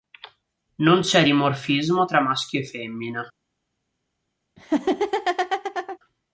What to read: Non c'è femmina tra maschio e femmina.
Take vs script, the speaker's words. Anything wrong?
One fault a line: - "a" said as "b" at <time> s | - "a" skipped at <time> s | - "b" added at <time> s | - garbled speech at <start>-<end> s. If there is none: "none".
- "femmina" said as "dimorfismo" at 1.2 s